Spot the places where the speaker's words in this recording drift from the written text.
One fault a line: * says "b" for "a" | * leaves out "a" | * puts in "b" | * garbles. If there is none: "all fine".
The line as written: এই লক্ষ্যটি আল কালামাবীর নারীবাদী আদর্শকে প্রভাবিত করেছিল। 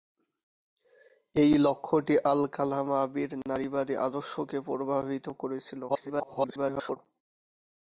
* garbles